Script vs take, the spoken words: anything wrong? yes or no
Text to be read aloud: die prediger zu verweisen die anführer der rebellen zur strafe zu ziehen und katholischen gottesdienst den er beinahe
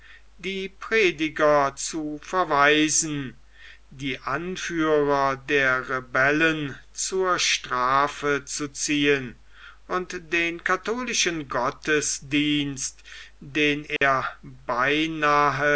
yes